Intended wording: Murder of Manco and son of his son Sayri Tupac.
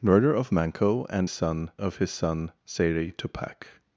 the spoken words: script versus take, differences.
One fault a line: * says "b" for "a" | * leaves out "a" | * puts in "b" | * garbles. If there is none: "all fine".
all fine